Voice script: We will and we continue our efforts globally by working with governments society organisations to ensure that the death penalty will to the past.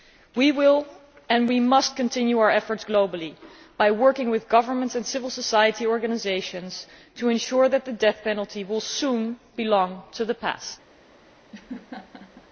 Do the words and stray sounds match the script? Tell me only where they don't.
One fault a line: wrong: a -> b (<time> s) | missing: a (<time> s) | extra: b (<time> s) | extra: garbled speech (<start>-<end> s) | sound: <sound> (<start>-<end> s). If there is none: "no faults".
extra: must (1.6 s)
extra: and civil (4.9 s)
extra: soon belong (8.8 s)
sound: laugh (11.5-12.5 s)